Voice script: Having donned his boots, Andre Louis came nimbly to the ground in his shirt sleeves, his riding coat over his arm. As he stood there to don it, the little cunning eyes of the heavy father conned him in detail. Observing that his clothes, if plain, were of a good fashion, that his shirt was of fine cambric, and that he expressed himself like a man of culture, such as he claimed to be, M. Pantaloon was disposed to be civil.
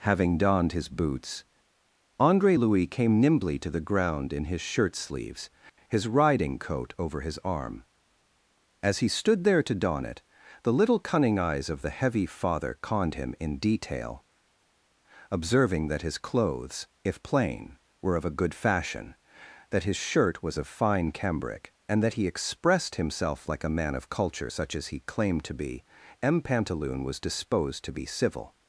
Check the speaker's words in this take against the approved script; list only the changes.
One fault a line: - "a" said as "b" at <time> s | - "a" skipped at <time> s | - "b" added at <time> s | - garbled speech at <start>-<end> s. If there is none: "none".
none